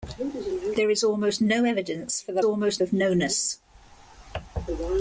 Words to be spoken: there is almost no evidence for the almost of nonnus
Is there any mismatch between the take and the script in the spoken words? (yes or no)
no